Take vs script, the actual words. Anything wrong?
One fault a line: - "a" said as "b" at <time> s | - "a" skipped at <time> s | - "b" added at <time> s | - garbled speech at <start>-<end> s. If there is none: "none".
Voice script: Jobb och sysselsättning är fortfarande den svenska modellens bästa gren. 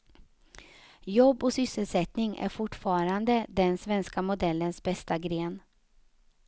none